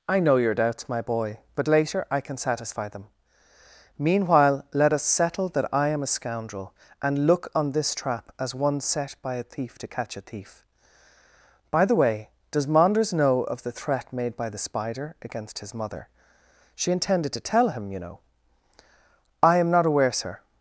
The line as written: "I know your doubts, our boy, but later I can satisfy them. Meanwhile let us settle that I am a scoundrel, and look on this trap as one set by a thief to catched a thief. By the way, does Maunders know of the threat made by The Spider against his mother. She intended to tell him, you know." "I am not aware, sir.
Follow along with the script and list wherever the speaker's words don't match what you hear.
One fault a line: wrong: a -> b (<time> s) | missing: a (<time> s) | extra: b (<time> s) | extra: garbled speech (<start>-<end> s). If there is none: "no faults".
wrong: our -> my (0.9 s)
wrong: catched -> catch (9.9 s)